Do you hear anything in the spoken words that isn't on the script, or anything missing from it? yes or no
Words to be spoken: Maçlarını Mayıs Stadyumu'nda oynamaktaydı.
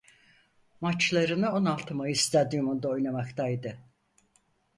yes